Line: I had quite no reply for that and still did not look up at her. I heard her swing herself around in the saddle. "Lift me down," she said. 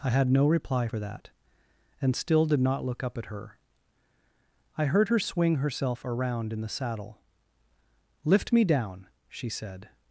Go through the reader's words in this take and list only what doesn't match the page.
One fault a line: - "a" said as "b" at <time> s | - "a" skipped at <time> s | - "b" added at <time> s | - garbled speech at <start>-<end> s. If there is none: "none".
- "quite" skipped at 0.3 s